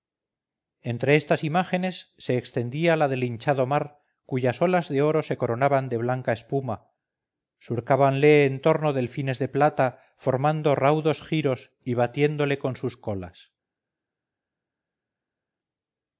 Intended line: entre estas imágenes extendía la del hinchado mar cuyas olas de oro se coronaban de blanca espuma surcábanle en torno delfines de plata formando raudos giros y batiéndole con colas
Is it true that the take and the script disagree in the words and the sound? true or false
true